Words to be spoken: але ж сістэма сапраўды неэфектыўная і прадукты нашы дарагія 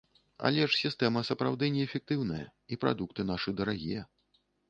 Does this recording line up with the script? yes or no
yes